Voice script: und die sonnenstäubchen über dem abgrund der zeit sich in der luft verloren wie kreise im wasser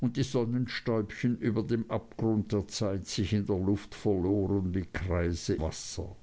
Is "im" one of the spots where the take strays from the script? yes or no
yes